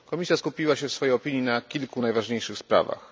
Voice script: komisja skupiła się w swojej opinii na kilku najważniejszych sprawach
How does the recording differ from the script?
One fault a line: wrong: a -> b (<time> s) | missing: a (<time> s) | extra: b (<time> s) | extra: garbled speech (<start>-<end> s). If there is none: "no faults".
no faults